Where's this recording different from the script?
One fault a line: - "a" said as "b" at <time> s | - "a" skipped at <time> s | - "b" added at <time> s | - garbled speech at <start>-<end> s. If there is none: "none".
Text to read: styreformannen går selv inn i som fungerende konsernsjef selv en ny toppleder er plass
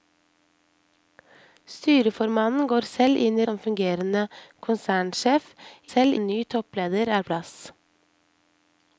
none